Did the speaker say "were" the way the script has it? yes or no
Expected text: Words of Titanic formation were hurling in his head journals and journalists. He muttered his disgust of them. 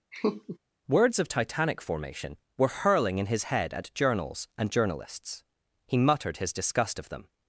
yes